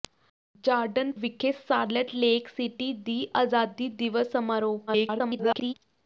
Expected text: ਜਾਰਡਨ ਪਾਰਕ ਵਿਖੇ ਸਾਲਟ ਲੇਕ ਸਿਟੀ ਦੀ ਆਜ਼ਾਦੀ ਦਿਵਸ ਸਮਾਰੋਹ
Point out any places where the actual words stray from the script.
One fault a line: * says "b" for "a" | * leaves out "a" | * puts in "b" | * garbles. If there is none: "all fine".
* leaves out "ਪਾਰਕ"
* garbles